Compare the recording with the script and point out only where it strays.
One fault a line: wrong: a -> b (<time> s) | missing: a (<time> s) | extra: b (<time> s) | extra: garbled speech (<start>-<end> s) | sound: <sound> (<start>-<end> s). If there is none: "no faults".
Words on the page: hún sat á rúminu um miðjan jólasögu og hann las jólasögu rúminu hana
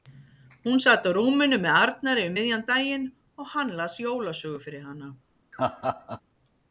extra: með arnari (1.6 s)
wrong: jólasögu -> daginn (2.7 s)
wrong: rúminu -> fyrir (4.7 s)
sound: laugh (5.5-6.2 s)